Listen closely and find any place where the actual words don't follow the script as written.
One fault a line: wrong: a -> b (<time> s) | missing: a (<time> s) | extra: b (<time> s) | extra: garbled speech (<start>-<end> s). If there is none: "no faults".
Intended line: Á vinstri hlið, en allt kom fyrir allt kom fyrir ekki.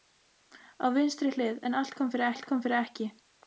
no faults